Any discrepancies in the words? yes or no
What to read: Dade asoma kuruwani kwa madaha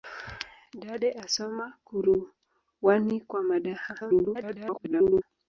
yes